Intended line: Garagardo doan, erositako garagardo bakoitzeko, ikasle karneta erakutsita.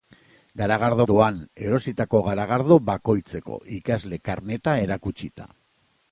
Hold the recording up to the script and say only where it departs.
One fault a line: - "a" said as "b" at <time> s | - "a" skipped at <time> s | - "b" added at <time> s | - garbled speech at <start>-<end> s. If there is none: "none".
none